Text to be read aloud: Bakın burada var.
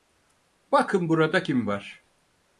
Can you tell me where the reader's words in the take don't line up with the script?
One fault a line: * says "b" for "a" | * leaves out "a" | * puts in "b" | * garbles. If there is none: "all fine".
* puts in "kim"